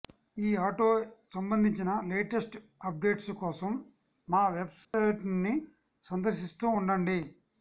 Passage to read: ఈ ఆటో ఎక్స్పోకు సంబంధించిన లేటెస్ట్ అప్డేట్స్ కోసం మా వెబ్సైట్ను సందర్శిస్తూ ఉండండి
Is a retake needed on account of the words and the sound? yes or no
yes